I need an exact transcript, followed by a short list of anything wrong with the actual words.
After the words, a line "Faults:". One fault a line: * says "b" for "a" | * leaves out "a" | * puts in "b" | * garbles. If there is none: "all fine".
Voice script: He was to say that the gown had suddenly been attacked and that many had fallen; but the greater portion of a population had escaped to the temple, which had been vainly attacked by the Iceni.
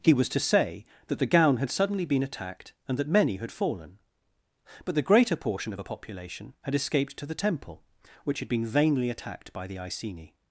He was to say that the gown had suddenly been attacked and that many had fallen; but the greater portion of a population had escaped to the temple, which had been vainly attacked by the Iceni.
Faults:
all fine